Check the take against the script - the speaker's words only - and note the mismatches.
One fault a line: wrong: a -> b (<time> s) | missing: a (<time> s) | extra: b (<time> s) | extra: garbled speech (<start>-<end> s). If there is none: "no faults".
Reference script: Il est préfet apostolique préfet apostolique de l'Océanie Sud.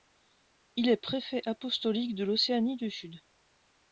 missing: préfet apostolique (2.1 s)
extra: du (2.8 s)